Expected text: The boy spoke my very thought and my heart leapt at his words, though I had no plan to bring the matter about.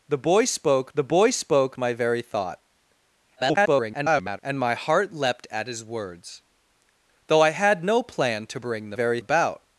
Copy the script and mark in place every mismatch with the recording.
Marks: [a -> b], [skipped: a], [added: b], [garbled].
The boy spoke [added: the boy spoke] my very thought [garbled] and my heart leapt at his words, though I had no plan to bring the [matter -> very] about.